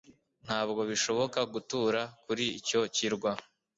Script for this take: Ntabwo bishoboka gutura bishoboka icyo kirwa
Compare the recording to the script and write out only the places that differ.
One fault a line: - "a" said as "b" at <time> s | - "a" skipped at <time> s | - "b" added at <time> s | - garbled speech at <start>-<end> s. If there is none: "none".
- "bishoboka" said as "kuri" at 2.2 s